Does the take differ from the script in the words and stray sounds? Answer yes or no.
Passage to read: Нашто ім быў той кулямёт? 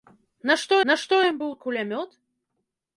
yes